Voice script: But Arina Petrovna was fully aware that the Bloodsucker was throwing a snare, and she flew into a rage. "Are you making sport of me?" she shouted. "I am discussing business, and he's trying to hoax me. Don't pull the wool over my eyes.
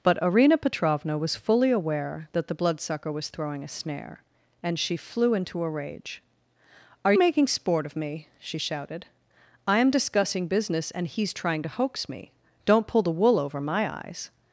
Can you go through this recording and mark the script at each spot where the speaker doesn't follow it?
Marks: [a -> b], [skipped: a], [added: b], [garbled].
But Arina Petrovna was fully aware that the Bloodsucker was throwing a snare, and she flew into a rage. "Are [skipped: you] making sport of me?" she shouted. "I am discussing business, and he's trying to hoax me. Don't pull the wool over my eyes.